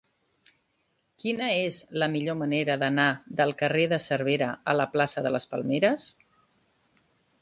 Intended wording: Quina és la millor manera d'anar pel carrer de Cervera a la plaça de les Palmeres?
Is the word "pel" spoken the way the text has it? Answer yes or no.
no